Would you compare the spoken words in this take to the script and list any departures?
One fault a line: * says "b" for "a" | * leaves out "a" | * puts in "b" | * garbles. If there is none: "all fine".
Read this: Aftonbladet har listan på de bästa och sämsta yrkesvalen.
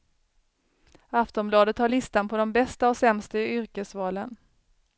all fine